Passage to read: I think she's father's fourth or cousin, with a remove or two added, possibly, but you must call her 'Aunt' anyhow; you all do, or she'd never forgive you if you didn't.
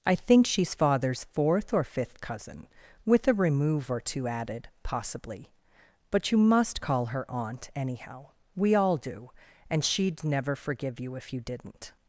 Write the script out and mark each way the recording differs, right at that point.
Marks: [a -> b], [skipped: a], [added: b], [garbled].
I think she's father's fourth or [added: fifth] cousin, with a remove or two added, possibly, but you must call her 'Aunt' anyhow; [you -> we] all do, [or -> and] she'd never forgive you if you didn't.